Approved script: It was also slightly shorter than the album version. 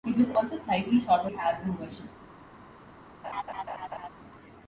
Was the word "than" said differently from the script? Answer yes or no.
yes